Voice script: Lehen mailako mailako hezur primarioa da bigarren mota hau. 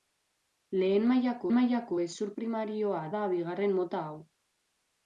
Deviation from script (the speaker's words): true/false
false